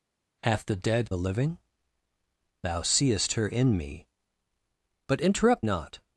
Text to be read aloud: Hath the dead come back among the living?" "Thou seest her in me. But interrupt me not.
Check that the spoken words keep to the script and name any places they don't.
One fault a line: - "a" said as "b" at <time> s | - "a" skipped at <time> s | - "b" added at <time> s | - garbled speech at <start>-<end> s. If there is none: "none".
- "come back among" skipped at 1.1 s
- "me" skipped at 5.7 s